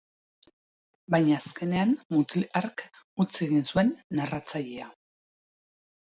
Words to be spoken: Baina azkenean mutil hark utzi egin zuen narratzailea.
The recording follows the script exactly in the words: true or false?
true